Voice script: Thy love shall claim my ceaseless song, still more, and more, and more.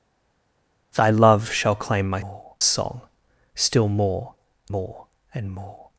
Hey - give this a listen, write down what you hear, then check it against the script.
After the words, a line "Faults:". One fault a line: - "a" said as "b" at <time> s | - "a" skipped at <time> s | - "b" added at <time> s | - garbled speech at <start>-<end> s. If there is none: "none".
Thy love shall claim my more song, still more, more, and more.
Faults:
- "ceaseless" said as "more" at 2.2 s
- "and" skipped at 4.4 s